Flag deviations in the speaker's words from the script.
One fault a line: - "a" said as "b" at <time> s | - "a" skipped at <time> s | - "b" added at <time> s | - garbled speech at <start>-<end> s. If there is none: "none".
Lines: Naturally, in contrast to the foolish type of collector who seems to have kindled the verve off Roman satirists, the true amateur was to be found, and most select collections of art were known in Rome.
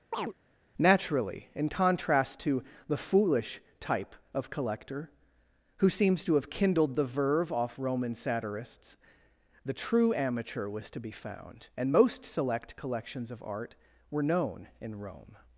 none